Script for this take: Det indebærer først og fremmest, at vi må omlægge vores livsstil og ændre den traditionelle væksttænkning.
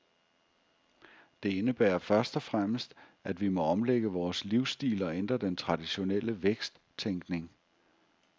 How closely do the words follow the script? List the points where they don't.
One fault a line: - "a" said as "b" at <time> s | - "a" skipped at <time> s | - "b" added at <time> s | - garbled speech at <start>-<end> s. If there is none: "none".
none